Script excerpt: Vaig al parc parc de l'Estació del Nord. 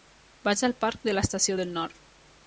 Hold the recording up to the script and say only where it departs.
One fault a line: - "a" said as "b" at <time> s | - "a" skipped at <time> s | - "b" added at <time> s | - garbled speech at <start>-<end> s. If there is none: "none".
- "parc" skipped at 1.0 s